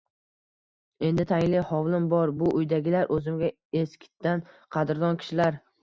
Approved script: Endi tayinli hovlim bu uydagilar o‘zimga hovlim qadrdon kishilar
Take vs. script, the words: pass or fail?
fail